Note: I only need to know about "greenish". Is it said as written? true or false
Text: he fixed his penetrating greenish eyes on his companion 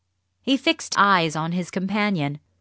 false